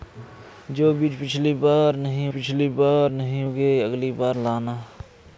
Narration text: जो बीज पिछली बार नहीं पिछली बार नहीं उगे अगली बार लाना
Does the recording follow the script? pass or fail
pass